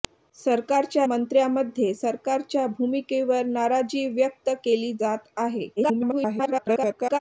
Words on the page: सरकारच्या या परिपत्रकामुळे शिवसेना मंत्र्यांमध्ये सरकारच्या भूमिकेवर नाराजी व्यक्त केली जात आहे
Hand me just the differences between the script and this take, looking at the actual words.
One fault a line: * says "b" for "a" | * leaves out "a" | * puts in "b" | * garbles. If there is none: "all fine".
* leaves out "या परिपत्रकामुळे शिवसेना"
* garbles